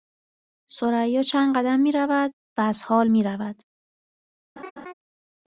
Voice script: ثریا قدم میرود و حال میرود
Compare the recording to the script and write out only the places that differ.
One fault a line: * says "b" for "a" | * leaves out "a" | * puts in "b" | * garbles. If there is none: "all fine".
* puts in "چند"
* puts in "از"